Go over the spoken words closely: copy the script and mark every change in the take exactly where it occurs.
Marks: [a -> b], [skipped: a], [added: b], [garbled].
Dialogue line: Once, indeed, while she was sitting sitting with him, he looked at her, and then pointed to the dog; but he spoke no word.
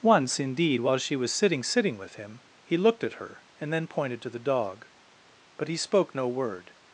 Once, indeed, while she was sitting sitting with him, he looked at her, and then pointed to the dog; but he spoke no word.